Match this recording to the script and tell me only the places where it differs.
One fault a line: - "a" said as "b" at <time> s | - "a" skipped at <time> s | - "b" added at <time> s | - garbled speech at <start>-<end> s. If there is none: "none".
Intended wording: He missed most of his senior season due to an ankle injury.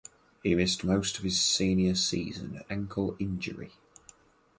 - "due to an" skipped at 2.6 s